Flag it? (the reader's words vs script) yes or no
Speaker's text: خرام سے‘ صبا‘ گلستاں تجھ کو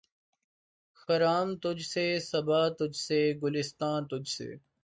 yes